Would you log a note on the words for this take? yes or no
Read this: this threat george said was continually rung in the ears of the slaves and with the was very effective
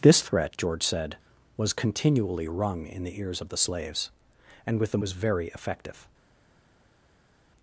no